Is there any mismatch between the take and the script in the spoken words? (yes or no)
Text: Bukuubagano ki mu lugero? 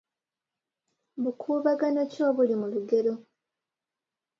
yes